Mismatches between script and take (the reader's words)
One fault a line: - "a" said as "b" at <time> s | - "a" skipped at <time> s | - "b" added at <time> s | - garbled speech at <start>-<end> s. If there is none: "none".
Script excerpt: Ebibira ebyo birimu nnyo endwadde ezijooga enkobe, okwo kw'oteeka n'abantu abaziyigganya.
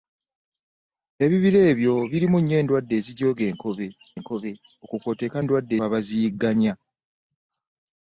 - "enkobe" added at 4.2 s
- "n'abantu" said as "endwadde" at 5.4 s